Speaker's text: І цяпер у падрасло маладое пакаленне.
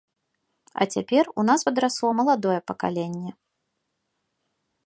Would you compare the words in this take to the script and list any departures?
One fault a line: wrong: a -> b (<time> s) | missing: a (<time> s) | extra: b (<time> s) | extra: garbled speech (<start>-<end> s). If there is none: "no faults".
wrong: І -> А (0.7 s)
extra: нас (1.5 s)